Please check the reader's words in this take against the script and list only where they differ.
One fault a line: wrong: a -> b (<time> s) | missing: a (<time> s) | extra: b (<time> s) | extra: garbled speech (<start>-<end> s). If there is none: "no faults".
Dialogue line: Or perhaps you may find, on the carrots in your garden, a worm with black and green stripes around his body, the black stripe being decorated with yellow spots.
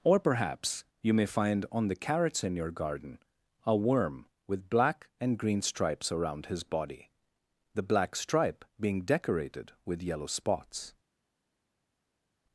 no faults